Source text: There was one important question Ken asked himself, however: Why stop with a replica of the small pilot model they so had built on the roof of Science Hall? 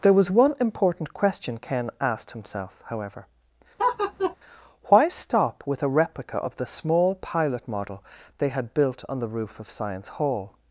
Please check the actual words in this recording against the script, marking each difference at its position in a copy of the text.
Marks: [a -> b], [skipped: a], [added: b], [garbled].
There was one important question Ken asked himself, however: Why stop with a replica of the small pilot model they [skipped: so] had built on the roof of Science Hall?